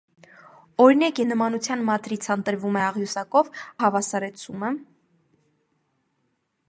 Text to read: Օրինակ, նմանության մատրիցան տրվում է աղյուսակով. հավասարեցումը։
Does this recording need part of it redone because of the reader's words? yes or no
no